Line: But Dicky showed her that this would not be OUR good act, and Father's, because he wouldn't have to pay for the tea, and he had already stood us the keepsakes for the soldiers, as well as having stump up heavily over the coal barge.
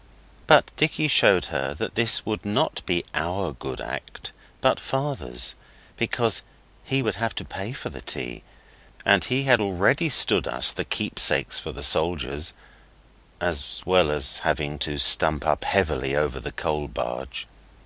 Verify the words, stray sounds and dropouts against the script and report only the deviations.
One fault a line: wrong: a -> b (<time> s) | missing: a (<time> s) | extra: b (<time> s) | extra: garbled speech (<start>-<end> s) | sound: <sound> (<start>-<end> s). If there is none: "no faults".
wrong: and -> but (4.6 s)
wrong: wouldn't -> would (7.0 s)
extra: to (14.8 s)